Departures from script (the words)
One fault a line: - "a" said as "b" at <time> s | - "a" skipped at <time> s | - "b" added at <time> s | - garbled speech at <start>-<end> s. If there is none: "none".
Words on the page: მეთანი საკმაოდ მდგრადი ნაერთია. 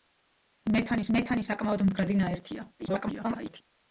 - "მეთანი" added at 1.2 s
- garbled speech at 2.8-3.6 s